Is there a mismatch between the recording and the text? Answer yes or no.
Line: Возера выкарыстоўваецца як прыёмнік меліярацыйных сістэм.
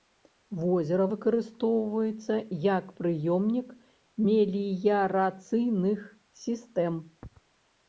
no